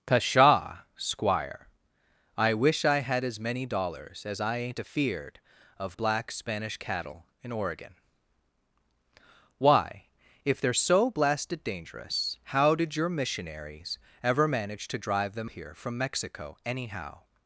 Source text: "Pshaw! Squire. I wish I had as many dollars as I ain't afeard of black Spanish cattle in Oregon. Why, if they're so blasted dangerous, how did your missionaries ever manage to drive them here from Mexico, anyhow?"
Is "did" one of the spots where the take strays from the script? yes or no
no